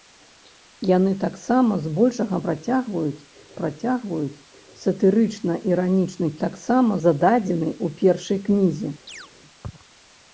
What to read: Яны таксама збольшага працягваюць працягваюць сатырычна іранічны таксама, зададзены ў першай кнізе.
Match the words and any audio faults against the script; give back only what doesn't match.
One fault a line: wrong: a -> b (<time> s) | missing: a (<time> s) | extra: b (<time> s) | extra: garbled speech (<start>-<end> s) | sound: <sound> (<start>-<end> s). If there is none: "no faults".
sound: chirp (9.1-9.3 s)